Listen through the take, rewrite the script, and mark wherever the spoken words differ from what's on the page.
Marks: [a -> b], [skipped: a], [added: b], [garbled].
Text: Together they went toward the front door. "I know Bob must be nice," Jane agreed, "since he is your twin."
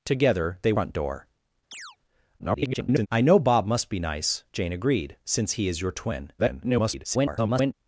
Together they [skipped: went toward the] front door. [garbled] "I know Bob must be nice," Jane agreed, "since he is your twin." [garbled]